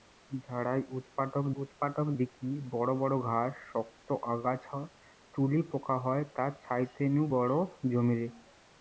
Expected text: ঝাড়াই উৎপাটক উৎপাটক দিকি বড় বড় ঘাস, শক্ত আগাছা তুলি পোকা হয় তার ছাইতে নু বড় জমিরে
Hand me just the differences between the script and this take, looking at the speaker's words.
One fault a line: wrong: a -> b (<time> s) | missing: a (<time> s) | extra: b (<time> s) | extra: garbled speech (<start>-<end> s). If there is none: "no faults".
no faults